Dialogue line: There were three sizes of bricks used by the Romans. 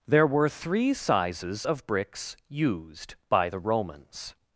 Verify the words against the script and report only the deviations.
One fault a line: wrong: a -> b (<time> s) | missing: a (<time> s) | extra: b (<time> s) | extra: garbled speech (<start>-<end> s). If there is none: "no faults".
no faults